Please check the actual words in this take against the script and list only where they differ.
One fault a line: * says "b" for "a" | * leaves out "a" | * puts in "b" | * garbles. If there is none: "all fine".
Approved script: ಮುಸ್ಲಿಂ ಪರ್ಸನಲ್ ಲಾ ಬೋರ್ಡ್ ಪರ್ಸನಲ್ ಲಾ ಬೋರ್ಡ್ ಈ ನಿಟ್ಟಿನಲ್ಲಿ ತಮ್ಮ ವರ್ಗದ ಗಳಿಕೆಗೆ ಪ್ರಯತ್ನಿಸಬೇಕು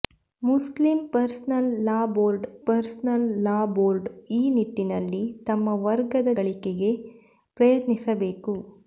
all fine